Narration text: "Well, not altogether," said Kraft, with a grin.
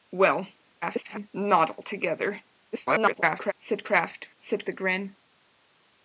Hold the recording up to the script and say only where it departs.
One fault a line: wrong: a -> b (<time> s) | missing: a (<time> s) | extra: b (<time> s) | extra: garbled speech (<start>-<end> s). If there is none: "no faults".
extra: garbled speech (0.8-1.3 s)
extra: garbled speech (2.7-3.5 s)
wrong: with -> said (4.4 s)